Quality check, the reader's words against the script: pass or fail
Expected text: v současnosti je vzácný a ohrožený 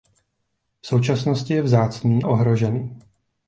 fail